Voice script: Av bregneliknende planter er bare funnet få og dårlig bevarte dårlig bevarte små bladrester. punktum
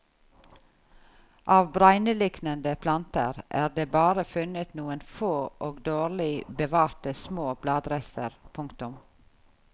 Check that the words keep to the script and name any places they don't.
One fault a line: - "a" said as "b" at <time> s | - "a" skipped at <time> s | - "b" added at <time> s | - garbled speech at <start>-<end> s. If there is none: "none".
- "det" added at 3.8 s
- "noen" added at 4.8 s
- "dårlig bevarte" skipped at 7.2 s